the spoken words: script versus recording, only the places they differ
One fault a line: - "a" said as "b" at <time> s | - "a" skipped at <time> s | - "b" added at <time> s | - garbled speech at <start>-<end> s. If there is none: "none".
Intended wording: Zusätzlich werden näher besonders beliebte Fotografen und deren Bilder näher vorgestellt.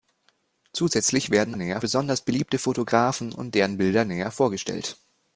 none